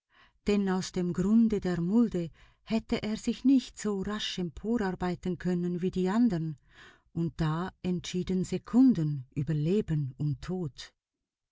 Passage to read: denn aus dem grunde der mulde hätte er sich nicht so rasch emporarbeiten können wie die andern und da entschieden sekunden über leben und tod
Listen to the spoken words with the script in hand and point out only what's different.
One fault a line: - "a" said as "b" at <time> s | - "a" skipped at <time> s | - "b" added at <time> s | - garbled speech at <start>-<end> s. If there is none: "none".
none